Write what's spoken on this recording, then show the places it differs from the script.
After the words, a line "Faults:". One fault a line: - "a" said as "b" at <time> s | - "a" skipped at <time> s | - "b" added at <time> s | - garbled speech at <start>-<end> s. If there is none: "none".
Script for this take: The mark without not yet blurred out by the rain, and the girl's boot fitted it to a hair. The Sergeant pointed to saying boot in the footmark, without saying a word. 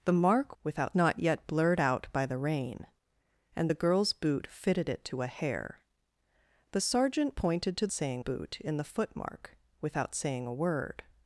The mark without not yet blurred out by the rain, and the girl's boot fitted it to a hair. The Sergeant pointed to saying boot in the footmark, without saying a word.
Faults:
none